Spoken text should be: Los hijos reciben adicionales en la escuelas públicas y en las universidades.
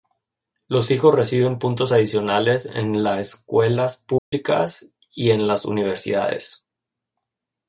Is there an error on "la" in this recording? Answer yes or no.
no